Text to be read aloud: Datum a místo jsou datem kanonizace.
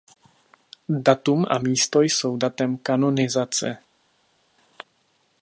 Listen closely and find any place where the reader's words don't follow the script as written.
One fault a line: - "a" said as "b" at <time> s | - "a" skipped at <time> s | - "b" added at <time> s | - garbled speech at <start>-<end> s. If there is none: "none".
none